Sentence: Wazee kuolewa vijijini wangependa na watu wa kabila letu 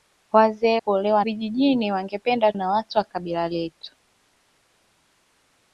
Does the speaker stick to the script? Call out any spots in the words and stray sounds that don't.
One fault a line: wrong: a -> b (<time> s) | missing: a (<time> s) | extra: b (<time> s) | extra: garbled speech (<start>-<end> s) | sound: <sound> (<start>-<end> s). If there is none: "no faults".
no faults